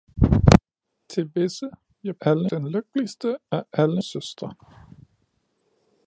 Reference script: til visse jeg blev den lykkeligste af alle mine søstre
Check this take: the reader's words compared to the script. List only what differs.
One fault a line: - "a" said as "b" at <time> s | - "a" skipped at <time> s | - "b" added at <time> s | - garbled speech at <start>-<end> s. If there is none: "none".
- "blev" said as "alle" at 2.2 s
- "mine" skipped at 4.0 s